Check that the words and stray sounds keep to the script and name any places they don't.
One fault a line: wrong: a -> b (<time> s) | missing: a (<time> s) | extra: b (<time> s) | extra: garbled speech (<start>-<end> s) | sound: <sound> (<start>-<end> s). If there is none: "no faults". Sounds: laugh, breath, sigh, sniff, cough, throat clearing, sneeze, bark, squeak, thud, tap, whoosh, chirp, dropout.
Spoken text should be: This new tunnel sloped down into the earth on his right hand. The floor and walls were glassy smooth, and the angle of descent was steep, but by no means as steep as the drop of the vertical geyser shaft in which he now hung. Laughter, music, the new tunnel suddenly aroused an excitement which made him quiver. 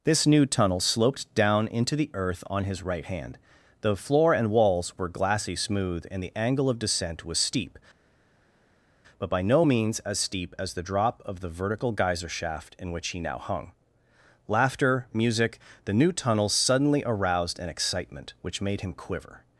no faults